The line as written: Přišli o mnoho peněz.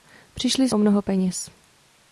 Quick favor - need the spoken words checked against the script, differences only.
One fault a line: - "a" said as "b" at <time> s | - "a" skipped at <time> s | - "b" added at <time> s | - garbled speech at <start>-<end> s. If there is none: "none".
none